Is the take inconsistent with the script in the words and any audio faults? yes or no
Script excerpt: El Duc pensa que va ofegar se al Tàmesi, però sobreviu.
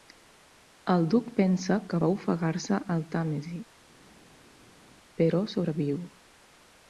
no